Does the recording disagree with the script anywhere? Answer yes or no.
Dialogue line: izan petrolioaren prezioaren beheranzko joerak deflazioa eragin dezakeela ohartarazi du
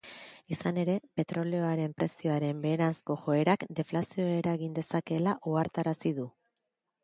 yes